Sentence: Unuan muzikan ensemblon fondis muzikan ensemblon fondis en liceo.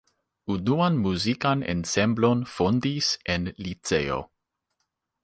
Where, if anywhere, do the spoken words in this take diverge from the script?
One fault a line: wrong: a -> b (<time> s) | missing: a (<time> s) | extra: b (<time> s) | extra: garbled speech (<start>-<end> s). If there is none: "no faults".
missing: muzikan ensemblon fondis (3.1 s)